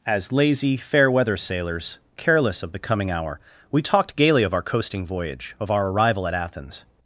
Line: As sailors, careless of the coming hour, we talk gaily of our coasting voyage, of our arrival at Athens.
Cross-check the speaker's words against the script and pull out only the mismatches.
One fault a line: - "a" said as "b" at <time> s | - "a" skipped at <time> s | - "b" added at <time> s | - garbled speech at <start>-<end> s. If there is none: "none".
- "lazy fair weather" added at 0.3 s
- "talk" said as "talked" at 3.8 s